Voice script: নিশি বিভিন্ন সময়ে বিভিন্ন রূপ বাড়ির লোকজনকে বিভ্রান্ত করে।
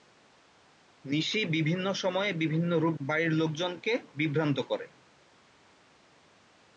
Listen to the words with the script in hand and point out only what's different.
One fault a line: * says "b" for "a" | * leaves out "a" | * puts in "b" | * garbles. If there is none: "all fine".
all fine